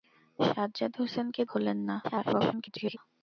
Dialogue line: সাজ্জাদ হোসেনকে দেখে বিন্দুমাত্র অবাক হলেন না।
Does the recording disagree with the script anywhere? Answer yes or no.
yes